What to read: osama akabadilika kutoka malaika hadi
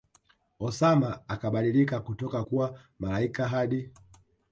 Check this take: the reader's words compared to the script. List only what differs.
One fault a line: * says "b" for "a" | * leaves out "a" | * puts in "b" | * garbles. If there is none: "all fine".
* puts in "kuwa"